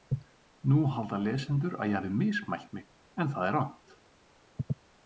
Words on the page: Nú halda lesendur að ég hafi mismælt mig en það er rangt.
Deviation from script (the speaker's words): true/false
false